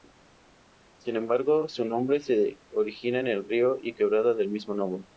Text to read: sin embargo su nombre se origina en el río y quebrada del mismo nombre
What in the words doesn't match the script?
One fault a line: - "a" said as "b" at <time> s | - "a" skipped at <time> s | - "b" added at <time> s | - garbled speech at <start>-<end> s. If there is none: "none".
none